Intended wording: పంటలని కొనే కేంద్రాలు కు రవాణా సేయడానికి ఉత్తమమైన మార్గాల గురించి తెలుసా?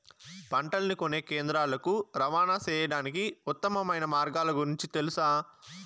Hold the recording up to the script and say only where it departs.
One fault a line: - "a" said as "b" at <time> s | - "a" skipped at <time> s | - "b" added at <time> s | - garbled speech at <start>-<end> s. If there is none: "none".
none